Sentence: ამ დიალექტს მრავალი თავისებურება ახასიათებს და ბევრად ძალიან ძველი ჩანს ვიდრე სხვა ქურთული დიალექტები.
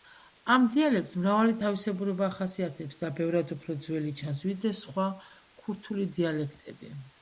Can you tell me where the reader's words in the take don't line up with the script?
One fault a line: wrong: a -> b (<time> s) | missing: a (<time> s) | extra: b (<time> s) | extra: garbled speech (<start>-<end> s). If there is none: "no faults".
wrong: ძალიან -> უფრო (3.6 s)